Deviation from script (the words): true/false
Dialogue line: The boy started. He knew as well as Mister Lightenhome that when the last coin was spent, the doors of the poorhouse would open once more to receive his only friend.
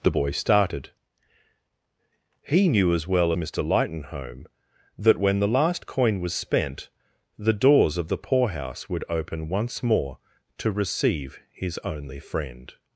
true